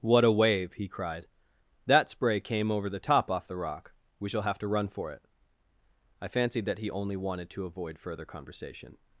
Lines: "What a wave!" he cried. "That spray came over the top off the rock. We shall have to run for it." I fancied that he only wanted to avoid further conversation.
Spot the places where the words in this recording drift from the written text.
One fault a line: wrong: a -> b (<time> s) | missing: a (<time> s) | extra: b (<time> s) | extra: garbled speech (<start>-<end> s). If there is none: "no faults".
no faults